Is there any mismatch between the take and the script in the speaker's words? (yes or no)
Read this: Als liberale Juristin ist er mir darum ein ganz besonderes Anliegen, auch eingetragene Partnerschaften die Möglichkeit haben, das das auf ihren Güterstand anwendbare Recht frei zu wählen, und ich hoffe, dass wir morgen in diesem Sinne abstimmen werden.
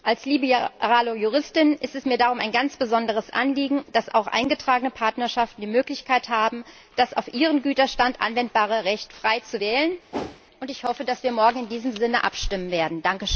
yes